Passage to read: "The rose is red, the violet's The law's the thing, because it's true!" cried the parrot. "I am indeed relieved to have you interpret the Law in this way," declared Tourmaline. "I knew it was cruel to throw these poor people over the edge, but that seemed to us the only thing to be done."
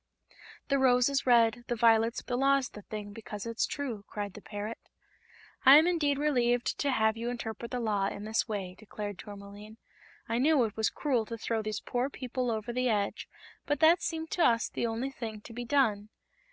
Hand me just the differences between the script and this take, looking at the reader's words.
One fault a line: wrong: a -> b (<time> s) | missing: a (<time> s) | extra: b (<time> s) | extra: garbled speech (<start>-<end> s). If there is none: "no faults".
no faults